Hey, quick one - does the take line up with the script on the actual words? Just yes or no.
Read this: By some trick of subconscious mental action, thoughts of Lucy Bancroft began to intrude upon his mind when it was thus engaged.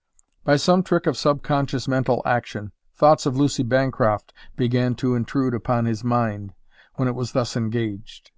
yes